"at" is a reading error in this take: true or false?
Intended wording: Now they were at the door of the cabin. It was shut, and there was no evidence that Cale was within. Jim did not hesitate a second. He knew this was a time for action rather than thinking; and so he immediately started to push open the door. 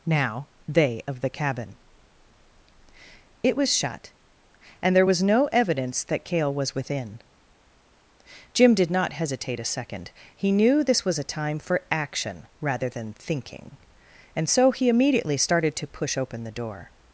true